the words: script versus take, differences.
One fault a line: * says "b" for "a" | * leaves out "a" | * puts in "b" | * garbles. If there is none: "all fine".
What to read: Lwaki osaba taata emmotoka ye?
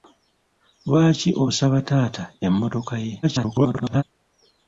* garbles